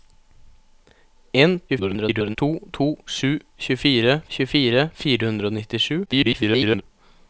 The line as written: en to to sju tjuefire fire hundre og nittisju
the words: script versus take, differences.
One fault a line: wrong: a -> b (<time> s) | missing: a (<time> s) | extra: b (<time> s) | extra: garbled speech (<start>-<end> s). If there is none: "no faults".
extra: garbled speech (1.7-2.4 s)
extra: tjuefire (4.4 s)
extra: garbled speech (6.1-6.8 s)